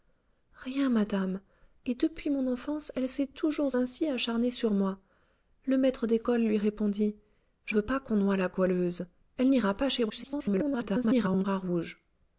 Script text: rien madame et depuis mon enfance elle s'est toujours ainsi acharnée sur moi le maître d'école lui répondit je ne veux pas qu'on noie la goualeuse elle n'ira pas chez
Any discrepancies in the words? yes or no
yes